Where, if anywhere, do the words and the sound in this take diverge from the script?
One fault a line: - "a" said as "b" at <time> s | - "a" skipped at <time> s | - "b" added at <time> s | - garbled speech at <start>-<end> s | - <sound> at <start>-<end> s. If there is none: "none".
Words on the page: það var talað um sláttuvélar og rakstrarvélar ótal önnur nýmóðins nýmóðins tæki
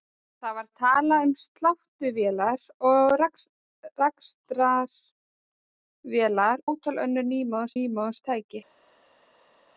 none